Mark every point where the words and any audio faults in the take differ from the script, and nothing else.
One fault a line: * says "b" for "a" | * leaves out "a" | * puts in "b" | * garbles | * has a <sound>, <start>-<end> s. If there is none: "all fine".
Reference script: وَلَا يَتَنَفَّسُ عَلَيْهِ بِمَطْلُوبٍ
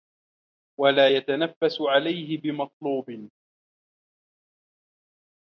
all fine